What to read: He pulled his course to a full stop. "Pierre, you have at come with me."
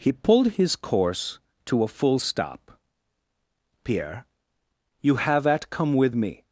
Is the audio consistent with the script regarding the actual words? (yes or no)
yes